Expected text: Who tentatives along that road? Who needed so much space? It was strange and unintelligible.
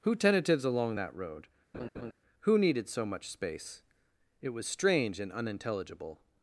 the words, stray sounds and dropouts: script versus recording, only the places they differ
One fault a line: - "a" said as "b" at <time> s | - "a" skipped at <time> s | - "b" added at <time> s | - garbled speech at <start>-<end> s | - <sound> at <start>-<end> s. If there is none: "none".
- laugh at 1.7-2.1 s